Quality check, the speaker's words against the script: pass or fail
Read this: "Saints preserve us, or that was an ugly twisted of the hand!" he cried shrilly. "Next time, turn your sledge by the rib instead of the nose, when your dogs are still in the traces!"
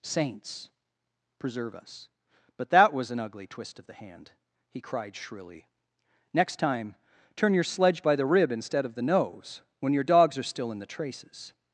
fail